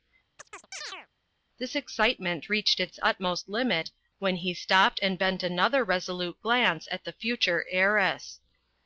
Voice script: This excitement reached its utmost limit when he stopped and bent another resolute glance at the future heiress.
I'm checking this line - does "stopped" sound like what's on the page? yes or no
yes